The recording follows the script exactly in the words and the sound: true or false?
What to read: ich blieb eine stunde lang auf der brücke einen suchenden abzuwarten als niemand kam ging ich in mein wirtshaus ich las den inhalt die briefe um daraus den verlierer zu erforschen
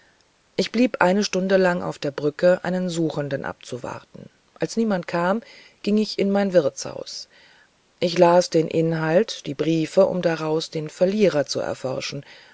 true